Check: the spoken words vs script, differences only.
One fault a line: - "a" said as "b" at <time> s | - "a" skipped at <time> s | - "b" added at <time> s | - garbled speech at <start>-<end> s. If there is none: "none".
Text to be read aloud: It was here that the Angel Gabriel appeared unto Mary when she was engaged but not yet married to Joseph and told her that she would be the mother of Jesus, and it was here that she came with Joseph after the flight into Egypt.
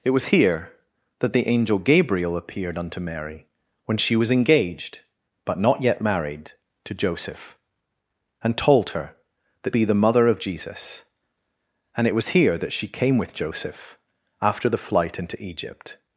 - "she would" skipped at 9.8 s